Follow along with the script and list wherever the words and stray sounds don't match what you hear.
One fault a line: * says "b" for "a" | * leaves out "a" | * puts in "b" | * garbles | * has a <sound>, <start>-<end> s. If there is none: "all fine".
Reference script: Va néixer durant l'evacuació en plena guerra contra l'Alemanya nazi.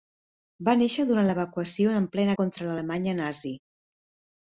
* leaves out "guerra"